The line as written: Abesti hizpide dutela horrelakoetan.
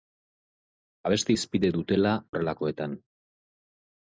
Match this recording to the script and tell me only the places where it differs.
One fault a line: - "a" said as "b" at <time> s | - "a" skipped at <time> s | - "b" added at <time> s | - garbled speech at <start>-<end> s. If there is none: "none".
none